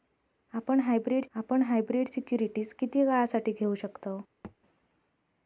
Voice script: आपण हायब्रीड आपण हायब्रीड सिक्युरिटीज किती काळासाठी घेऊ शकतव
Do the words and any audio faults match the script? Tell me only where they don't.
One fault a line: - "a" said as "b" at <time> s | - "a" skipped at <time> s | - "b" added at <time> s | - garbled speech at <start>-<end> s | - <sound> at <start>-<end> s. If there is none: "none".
- thud at 4.4-4.6 s